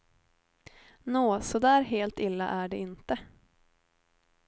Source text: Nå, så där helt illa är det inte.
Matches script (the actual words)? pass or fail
pass